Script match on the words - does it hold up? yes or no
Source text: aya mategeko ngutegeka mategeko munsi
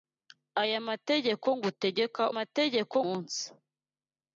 yes